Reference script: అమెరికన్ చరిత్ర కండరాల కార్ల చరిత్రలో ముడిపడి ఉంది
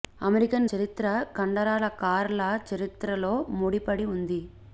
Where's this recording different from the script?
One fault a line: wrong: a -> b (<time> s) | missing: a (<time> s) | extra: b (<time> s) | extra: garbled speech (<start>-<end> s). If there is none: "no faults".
no faults